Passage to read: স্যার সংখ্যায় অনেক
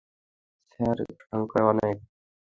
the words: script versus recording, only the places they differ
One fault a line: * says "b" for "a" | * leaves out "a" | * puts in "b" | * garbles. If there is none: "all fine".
all fine